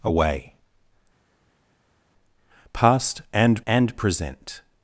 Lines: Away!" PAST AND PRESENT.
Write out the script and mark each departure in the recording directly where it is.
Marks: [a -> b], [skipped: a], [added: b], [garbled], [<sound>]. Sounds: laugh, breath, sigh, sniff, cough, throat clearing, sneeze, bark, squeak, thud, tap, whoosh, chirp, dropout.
Away!" PAST AND [added: AND] PRESENT.